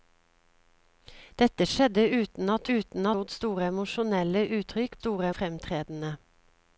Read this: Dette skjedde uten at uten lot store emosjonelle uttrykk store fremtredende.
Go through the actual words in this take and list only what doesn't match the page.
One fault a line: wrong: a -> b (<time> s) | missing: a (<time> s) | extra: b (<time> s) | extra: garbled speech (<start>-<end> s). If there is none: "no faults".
no faults